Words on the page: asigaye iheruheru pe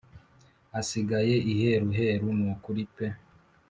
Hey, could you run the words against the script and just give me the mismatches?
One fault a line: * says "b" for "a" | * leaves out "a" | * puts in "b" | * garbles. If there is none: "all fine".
* puts in "nukuri"